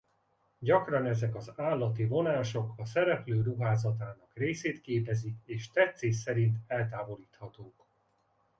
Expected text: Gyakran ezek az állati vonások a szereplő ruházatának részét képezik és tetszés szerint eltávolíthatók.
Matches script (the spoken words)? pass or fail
pass